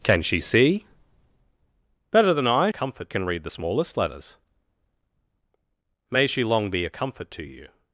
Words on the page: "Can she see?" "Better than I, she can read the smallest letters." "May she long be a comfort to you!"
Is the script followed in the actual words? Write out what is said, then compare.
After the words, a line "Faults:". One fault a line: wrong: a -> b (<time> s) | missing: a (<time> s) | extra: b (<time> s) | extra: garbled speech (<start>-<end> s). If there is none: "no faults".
"Can she see?" "Better than I, comfort can read the smallest letters." "May she long be a comfort to you!"
Faults:
wrong: she -> comfort (2.7 s)